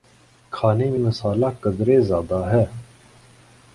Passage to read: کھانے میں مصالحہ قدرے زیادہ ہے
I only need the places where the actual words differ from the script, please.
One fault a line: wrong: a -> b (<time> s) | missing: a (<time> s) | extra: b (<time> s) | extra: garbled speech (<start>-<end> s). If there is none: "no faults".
no faults